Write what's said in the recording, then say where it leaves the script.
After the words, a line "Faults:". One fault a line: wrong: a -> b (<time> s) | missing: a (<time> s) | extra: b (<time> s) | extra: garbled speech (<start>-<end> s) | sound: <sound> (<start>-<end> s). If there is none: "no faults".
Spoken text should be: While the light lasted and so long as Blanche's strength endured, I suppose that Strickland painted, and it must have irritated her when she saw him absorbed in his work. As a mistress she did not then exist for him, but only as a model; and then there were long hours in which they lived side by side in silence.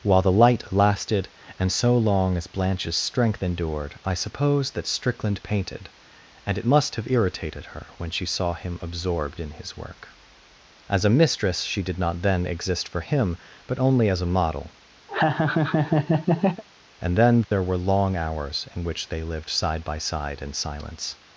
While the light lasted and so long as Blanche's strength endured, I suppose that Strickland painted, and it must have irritated her when she saw him absorbed in his work. As a mistress she did not then exist for him, but only as a model; and then there were long hours in which they lived side by side in silence.
Faults:
sound: laugh (15.1-16.6 s)
sound: dropout (17.4-17.5 s)